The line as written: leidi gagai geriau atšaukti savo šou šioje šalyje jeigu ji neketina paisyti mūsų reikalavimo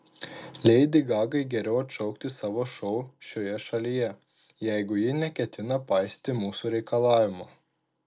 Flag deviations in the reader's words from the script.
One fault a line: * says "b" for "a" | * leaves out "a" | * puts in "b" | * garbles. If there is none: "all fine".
all fine